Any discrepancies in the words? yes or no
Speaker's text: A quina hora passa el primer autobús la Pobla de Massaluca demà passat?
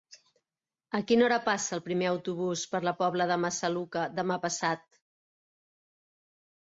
yes